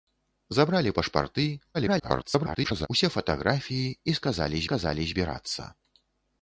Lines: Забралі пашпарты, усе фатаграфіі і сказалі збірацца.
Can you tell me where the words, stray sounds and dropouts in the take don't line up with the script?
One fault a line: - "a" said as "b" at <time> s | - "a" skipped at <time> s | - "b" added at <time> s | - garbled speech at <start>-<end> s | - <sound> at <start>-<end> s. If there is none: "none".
- garbled speech at 1.7-2.9 s
- "сказалі" added at 4.7 s